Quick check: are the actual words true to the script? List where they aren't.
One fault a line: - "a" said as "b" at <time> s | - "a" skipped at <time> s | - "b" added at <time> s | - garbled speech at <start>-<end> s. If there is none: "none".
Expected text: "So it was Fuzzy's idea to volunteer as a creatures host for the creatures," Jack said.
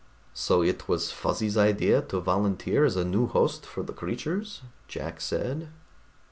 - "creatures" said as "new" at 3.0 s